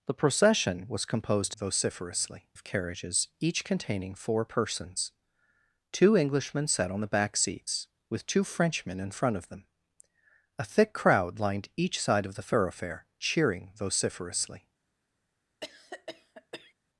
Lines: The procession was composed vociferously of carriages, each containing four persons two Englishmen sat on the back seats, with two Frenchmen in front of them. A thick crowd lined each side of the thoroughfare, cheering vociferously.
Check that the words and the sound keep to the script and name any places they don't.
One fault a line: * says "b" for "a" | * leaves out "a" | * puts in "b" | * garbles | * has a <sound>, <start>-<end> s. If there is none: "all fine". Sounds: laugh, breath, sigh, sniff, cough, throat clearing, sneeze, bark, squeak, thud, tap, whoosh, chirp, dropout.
* has a cough, 15.6-16.7 s